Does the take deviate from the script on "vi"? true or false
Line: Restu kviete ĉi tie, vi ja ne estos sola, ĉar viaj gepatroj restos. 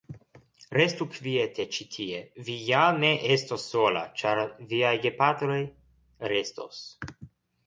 false